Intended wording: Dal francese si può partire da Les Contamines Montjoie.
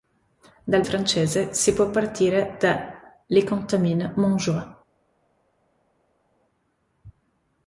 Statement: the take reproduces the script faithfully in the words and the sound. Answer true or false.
true